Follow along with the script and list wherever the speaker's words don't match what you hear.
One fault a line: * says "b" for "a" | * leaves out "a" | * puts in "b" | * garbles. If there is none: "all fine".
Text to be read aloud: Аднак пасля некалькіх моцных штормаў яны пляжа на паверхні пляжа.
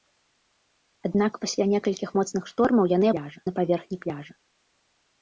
all fine